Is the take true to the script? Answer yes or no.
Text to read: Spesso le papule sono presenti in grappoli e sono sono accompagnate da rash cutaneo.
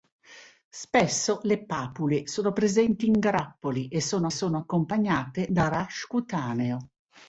yes